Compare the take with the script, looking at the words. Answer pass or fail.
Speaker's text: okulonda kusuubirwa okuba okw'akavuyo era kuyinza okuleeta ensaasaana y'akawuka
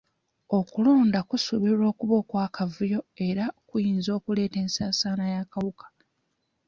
pass